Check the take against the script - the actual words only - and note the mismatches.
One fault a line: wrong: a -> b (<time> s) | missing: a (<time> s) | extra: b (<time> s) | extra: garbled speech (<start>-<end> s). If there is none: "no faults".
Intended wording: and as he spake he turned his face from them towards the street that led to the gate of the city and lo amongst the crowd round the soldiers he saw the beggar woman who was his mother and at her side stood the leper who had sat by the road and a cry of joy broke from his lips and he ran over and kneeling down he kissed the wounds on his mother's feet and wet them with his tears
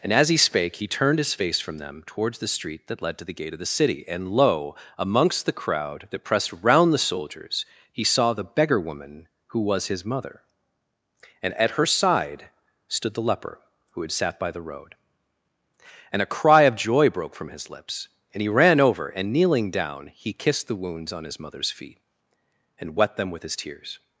extra: that pressed (6.1 s)